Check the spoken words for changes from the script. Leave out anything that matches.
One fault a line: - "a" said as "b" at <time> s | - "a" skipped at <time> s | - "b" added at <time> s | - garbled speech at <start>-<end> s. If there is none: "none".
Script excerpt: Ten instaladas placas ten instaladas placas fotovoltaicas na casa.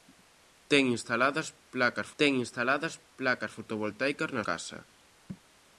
none